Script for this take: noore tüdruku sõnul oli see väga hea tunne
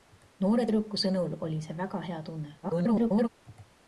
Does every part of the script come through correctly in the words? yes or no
no